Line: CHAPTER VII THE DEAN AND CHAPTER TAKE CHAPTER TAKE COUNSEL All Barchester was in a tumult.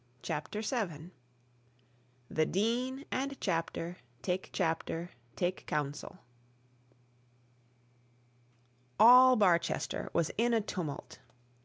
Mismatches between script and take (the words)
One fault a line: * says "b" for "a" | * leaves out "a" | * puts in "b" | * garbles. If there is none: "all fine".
all fine